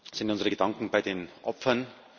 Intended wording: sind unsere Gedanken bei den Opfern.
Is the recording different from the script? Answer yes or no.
no